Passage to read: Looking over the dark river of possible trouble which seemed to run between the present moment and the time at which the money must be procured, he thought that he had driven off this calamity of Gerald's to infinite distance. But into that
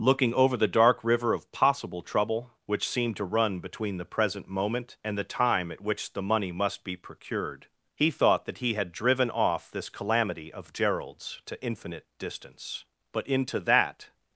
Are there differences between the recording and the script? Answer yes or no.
no